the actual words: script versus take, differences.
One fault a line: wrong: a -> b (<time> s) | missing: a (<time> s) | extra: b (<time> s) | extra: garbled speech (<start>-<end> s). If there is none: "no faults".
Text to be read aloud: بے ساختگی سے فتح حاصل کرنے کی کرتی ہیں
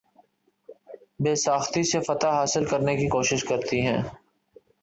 extra: کوشش (3.1 s)